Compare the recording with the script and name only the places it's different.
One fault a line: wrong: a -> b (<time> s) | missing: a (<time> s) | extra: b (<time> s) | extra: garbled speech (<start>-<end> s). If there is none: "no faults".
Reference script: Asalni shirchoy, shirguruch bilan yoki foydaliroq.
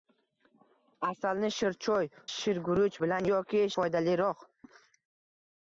no faults